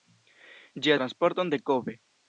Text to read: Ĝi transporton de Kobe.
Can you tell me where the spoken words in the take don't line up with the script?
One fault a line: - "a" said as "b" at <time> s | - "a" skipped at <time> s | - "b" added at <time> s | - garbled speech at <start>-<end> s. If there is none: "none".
none